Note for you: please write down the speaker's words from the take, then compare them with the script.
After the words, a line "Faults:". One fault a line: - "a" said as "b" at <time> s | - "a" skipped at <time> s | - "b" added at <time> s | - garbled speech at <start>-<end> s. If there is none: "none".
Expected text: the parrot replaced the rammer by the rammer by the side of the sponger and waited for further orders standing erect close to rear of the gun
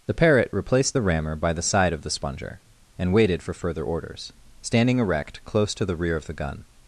the parrot replaced the rammer by the side of the sponger and waited for further orders standing erect close to the rear of the gun
Faults:
- "rammer by the" skipped at 1.6 s
- "the" added at 5.8 s